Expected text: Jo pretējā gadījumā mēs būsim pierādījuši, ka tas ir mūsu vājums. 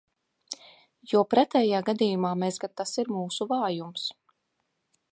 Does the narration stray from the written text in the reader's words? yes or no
yes